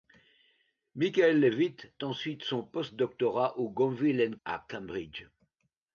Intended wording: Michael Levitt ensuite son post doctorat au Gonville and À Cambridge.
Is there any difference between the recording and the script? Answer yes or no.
no